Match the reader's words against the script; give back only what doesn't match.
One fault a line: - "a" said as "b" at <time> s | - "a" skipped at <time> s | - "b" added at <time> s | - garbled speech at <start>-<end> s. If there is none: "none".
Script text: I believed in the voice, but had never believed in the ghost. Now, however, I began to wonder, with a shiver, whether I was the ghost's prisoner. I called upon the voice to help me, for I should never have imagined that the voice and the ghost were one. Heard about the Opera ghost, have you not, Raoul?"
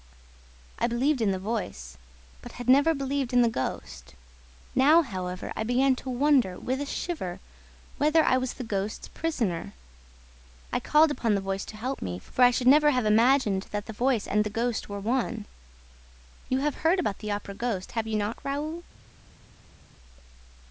- "You have" added at 16.5 s